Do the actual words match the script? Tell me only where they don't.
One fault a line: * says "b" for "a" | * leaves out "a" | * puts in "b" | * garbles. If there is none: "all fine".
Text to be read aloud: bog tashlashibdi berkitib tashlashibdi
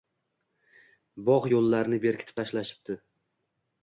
* says "yo‘llarini" for "tashlashibdi"